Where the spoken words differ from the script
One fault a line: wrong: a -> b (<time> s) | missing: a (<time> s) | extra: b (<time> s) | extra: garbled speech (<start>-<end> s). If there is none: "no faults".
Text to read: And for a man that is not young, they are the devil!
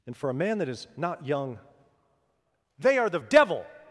no faults